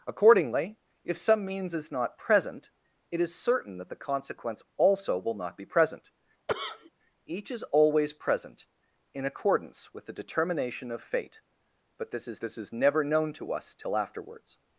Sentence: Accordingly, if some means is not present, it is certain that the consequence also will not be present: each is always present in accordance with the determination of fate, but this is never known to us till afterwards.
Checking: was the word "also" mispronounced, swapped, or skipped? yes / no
no